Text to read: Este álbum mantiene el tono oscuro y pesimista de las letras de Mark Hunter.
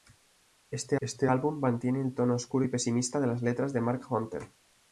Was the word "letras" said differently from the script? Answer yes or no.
no